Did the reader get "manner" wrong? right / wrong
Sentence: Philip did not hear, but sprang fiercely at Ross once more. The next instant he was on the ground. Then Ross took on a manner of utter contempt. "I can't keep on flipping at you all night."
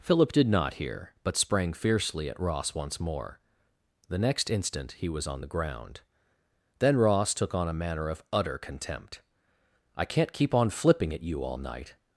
right